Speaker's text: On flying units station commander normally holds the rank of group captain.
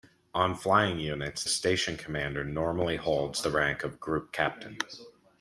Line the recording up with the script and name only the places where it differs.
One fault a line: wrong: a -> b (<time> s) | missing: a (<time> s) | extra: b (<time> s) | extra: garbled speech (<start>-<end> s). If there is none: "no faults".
no faults